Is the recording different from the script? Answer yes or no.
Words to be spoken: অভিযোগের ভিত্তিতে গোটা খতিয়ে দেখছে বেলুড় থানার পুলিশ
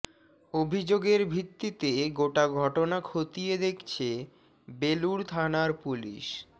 yes